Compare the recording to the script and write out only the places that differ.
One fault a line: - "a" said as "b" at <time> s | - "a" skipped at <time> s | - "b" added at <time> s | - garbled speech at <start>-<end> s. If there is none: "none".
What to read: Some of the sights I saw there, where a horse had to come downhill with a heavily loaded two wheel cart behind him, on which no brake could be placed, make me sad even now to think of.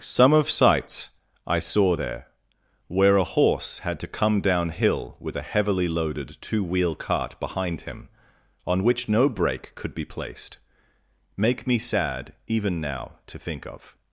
- "the" skipped at 0.5 s